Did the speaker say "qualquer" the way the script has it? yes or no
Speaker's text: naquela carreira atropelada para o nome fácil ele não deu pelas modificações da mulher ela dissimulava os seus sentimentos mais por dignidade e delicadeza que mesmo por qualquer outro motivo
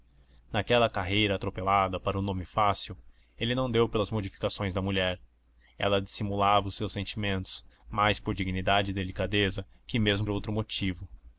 no